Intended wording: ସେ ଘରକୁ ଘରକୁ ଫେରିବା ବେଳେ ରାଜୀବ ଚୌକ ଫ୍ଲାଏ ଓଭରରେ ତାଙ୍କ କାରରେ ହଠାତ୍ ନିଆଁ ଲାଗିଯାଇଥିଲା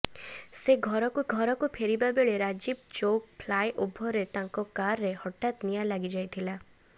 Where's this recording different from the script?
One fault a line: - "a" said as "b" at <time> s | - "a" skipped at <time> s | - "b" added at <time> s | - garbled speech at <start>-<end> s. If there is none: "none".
none